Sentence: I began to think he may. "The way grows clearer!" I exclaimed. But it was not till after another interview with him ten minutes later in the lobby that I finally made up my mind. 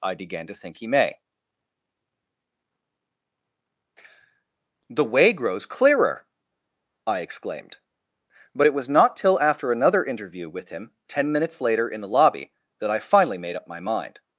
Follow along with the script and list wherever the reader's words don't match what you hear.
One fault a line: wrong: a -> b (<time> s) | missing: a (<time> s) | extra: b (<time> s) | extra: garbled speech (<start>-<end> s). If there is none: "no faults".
no faults